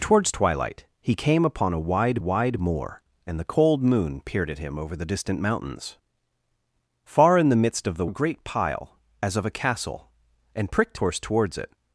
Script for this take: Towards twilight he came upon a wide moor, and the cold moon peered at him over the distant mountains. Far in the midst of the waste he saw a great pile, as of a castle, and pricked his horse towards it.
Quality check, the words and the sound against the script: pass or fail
fail